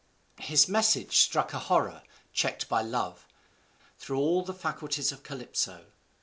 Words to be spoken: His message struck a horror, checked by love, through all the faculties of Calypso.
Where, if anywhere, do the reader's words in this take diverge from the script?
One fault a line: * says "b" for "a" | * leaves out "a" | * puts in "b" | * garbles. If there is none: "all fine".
all fine